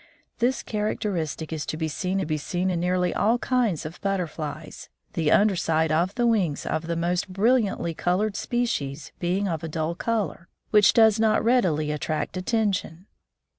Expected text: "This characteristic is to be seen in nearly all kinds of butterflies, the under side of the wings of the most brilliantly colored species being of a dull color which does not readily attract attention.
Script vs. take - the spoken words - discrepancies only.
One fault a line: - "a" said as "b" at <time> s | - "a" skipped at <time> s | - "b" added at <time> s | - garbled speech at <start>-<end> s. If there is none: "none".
- "be seen" added at 2.2 s